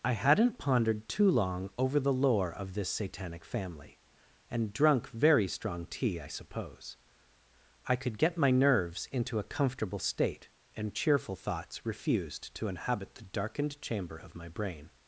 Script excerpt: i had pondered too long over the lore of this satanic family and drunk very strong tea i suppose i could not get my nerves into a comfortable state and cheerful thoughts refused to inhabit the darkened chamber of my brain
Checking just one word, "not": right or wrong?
wrong